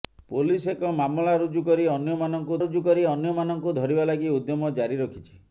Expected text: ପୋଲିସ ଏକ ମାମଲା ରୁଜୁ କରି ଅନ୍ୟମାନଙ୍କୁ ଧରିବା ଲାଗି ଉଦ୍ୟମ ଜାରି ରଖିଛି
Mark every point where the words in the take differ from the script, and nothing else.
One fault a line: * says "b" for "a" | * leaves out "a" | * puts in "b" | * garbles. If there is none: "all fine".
* puts in "ରୁଜୁ କରି ଅନ୍ୟମାନଙ୍କୁ"